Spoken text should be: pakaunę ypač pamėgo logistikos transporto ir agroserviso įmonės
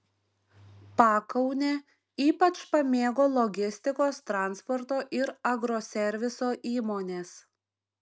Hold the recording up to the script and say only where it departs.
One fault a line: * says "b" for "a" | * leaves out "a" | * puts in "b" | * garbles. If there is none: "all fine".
all fine